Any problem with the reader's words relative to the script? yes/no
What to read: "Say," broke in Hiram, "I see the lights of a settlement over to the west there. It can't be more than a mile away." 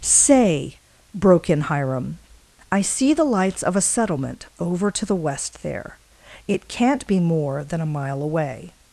no